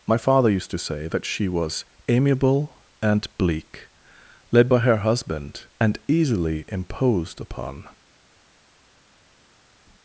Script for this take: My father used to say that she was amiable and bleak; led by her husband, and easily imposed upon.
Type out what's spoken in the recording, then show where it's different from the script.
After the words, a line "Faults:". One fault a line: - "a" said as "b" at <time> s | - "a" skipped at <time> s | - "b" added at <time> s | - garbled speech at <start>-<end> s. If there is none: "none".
My father used to say that she was amiable and bleak; led by her husband, and easily imposed upon.
Faults:
none